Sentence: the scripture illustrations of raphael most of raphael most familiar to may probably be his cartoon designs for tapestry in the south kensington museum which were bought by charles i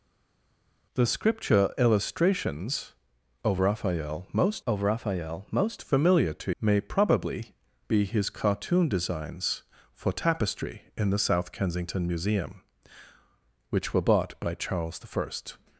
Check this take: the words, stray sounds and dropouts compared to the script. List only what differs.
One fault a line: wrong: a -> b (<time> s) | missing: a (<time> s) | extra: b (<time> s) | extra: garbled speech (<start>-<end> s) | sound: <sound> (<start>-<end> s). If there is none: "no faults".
no faults